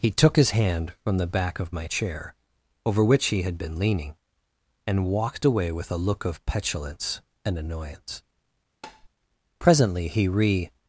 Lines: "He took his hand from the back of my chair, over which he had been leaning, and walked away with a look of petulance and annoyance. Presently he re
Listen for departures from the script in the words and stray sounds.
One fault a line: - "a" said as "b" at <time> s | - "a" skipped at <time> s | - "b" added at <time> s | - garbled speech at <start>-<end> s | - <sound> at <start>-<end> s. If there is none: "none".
- tap at 8.8-9.1 s